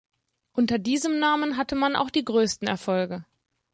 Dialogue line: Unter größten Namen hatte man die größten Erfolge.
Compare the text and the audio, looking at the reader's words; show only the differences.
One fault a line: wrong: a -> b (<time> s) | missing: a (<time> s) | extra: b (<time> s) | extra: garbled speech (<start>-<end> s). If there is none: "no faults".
wrong: größten -> diesem (0.8 s)
extra: auch (1.9 s)